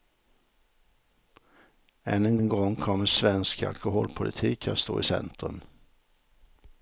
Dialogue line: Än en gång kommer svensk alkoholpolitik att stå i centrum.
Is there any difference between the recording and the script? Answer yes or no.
yes